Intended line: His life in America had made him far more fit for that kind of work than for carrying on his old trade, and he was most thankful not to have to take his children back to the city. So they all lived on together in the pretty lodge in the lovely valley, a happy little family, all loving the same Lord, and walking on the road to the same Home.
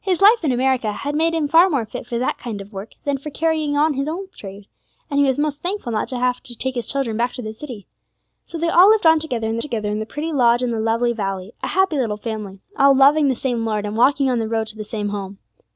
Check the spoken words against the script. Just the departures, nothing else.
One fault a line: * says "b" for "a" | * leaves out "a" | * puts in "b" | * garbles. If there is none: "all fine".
* puts in "together in"